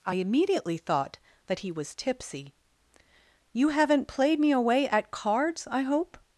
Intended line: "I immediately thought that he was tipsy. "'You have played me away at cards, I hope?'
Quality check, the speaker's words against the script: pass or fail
fail